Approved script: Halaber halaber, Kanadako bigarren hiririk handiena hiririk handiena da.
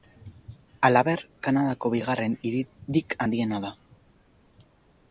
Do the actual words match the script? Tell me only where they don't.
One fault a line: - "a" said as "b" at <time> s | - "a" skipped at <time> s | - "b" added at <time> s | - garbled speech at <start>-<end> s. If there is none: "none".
- "halaber" skipped at 1.2 s
- "hiririk handiena" skipped at 3.7 s